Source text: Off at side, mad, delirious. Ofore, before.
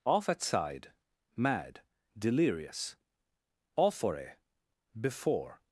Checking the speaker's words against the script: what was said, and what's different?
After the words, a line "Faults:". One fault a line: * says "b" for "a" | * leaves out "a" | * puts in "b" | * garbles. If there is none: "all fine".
Off at side, mad, delirious. Ofore, before.
Faults:
all fine